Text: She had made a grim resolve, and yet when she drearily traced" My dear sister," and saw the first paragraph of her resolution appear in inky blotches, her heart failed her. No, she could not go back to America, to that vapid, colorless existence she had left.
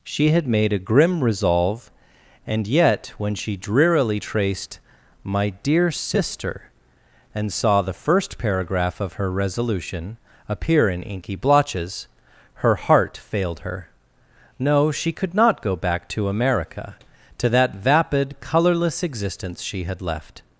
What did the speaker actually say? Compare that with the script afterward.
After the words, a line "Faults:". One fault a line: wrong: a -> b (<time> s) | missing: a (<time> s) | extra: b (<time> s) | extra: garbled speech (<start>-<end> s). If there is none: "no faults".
She had made a grim resolve, and yet when she drearily traced" My dear sister," and saw the first paragraph of her resolution appear in inky blotches, her heart failed her. No, she could not go back to America, to that vapid, colorless existence she had left.
Faults:
no faults